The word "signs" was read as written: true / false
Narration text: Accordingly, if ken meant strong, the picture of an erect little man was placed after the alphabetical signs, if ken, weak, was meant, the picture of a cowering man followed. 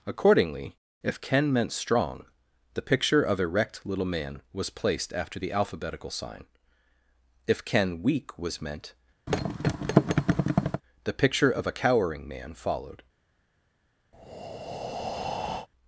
false